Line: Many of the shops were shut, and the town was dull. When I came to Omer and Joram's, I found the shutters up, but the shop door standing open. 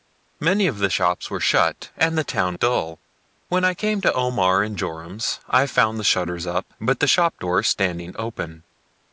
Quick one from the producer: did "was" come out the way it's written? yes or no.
no